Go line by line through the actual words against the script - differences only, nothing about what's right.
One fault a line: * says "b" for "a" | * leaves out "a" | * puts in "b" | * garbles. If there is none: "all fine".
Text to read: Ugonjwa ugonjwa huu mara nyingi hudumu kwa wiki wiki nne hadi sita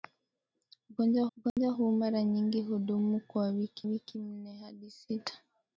all fine